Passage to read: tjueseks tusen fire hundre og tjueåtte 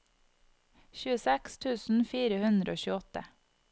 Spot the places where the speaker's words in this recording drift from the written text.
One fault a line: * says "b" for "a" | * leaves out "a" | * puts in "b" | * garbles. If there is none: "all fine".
all fine